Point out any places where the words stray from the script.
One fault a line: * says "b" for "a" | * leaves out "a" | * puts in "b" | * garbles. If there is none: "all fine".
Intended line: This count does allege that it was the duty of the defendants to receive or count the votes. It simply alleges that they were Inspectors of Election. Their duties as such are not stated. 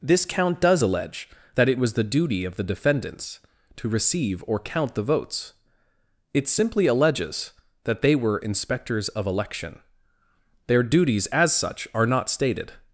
all fine